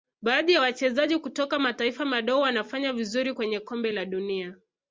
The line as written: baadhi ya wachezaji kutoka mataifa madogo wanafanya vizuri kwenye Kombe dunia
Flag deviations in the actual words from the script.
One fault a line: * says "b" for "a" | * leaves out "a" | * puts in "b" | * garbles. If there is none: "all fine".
* puts in "la"